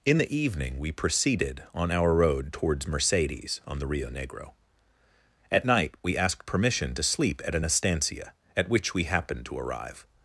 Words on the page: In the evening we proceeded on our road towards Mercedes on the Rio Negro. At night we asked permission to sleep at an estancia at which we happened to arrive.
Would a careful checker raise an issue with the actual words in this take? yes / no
no